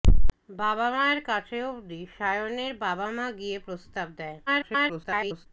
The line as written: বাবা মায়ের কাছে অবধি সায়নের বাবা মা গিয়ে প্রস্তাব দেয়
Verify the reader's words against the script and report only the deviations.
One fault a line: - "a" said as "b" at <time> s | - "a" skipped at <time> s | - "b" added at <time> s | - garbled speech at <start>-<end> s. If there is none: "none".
- garbled speech at 4.5-5.5 s